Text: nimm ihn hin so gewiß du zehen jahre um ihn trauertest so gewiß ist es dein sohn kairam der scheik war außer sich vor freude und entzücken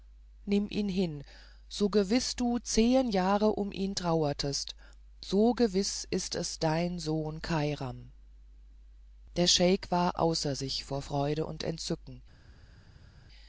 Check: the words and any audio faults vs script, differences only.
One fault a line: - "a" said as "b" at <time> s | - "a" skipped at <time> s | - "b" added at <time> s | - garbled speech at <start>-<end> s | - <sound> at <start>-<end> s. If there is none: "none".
none